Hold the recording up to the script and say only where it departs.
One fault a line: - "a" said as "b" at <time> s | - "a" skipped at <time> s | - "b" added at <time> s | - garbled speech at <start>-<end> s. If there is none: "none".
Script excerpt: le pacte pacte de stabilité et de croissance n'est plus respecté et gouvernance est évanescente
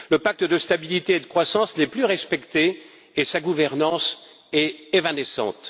- "pacte" skipped at 0.4 s
- "sa" added at 3.2 s